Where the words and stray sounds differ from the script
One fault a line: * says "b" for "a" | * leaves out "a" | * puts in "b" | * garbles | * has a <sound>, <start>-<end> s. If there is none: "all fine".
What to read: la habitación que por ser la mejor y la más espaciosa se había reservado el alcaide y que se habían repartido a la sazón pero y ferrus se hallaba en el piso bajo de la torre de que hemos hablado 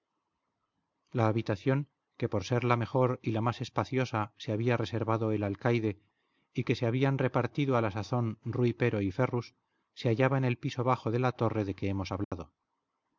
* puts in "rui"
* has a dropout, 12.2-12.3 s